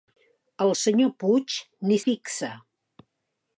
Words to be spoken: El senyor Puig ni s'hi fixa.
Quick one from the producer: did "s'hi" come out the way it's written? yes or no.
no